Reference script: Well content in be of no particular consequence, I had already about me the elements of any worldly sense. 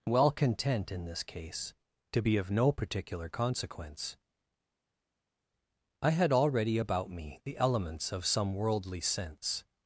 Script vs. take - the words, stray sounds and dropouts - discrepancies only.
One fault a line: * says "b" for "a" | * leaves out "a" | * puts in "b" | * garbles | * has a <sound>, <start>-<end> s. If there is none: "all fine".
* puts in "this case to"
* says "some" for "any"